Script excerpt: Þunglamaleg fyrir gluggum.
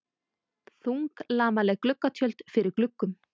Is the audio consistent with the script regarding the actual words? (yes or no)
no